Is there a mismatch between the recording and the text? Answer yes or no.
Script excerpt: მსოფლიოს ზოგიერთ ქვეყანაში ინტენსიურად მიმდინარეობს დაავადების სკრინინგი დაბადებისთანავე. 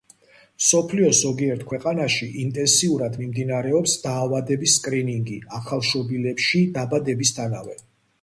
yes